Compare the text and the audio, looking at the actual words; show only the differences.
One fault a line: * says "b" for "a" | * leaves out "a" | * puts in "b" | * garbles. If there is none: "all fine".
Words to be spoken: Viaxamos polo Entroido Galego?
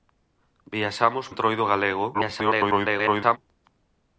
* leaves out "polo"
* garbles